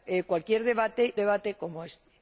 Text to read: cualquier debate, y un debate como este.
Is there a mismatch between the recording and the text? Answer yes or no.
yes